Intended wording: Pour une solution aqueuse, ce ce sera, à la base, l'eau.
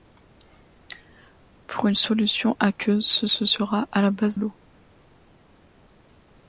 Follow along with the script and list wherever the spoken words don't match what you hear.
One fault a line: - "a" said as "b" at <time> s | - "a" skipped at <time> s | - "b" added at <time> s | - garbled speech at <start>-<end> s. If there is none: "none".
none